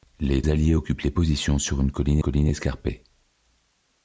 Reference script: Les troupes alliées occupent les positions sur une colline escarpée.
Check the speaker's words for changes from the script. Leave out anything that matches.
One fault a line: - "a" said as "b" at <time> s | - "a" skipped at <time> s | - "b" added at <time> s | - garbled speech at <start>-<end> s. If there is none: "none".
- "troupes" skipped at 0.4 s
- "colline" added at 2.2 s